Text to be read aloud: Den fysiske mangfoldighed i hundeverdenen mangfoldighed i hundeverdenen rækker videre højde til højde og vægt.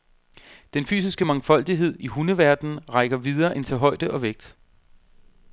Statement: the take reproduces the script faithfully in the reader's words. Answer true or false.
false